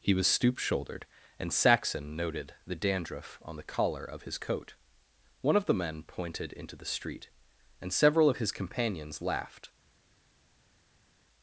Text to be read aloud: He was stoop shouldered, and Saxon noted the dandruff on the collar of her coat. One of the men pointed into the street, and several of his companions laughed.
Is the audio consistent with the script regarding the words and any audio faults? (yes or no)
no